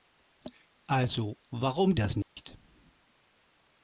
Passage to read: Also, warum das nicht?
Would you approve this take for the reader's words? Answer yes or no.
yes